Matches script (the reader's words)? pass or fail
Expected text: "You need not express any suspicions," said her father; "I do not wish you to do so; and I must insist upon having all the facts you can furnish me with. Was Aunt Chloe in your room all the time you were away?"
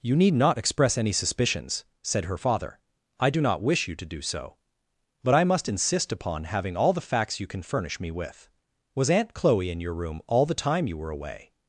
fail